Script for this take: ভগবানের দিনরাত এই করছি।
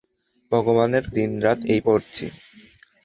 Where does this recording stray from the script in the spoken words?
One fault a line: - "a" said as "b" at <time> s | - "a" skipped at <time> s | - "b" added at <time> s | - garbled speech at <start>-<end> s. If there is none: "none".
none